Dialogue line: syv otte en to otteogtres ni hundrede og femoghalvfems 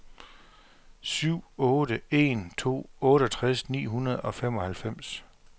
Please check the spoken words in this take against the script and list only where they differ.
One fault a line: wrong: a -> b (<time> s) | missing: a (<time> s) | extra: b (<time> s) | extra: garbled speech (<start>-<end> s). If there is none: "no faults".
no faults